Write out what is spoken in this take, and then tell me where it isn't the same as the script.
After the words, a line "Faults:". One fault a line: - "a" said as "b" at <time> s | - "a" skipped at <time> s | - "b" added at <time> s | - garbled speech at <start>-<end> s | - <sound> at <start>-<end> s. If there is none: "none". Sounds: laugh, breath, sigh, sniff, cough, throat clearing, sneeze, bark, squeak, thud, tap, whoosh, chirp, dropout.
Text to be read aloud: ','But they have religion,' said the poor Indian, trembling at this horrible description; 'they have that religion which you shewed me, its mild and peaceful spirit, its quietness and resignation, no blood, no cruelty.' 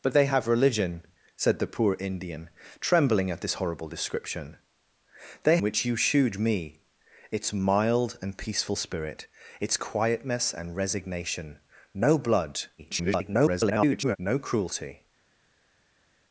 ','But they have religion,' said the poor Indian, trembling at this horrible description; 'they which you shewed me, its mild and peaceful spirit, its quietness and resignation, no blood, [garbled] no cruelty.'
Faults:
- "have that religion" skipped at 5.6 s
- garbled speech at 12.8-14.2 s